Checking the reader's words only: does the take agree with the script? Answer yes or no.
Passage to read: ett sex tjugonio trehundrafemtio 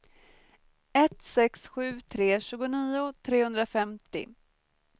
no